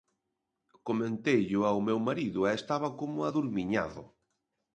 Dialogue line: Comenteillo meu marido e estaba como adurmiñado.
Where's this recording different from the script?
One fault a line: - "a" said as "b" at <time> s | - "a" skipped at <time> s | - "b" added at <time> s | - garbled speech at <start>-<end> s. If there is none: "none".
- "ao" added at 1.6 s